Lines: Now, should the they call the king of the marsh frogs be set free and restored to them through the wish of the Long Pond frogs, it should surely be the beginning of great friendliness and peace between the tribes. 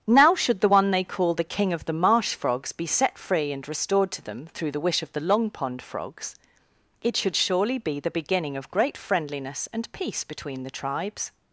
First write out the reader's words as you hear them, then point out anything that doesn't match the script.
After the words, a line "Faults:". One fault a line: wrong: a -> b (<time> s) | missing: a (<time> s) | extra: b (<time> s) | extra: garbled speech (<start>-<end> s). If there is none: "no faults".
Now, should the one they call the king of the marsh frogs be set free and restored to them through the wish of the Long Pond frogs, it should surely be the beginning of great friendliness and peace between the tribes.
Faults:
extra: one (0.7 s)